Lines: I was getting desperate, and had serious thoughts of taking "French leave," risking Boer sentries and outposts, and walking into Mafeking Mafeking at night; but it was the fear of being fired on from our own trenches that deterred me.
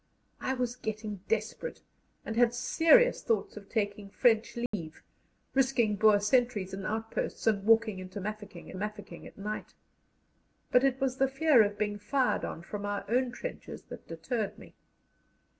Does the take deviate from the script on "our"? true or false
false